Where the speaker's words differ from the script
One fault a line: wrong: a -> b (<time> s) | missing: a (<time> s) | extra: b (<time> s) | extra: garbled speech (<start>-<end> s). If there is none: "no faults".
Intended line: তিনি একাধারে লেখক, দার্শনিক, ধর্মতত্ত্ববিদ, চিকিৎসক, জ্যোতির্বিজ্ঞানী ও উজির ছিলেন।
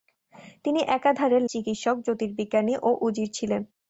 missing: লেখক দার্শনিক ধর্মতত্ত্ববিদ (1.4 s)